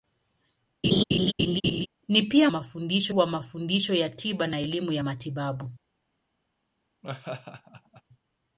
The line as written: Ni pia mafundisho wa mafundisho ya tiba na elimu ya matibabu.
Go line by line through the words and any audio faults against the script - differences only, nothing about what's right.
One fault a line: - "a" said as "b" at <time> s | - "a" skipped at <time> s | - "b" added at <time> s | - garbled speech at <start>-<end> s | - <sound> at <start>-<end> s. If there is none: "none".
- laugh at 0.8-1.9 s
- laugh at 7.0-8.0 s